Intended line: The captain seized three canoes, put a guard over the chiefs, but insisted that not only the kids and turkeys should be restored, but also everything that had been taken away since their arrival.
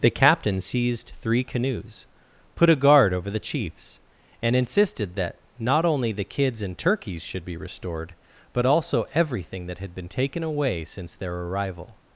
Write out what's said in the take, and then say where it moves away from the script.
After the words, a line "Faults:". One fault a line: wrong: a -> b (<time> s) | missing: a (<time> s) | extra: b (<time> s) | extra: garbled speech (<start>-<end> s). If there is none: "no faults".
The captain seized three canoes, put a guard over the chiefs, and insisted that not only the kids and turkeys should be restored, but also everything that had been taken away since their arrival.
Faults:
wrong: but -> and (4.4 s)